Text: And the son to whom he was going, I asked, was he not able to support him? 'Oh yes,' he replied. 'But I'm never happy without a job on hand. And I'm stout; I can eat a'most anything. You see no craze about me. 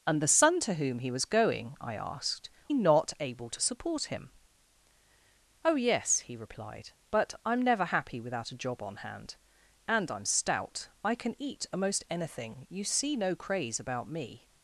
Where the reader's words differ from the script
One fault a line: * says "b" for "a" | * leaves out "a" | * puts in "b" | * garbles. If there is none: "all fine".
* leaves out "was he"